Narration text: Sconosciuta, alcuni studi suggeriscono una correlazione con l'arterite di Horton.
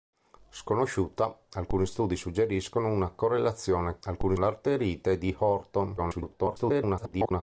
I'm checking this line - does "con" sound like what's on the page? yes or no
no